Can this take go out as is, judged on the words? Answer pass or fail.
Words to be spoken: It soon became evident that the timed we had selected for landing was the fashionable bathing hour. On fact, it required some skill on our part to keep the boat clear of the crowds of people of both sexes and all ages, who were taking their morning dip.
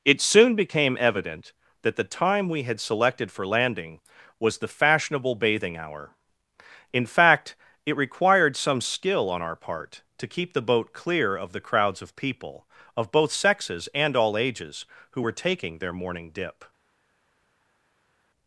fail